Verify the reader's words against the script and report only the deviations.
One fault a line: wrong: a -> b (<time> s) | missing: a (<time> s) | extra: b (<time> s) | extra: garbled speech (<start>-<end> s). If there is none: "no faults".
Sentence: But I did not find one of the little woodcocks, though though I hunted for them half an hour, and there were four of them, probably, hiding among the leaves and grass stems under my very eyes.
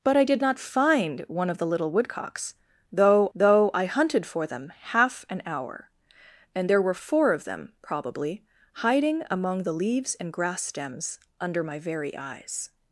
no faults